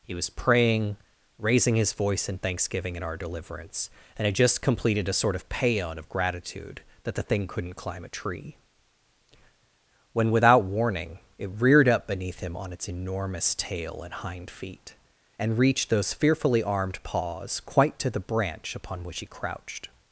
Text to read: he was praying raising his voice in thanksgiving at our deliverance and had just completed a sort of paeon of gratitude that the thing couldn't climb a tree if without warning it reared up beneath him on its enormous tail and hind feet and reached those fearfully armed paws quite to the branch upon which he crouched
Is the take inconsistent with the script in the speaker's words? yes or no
yes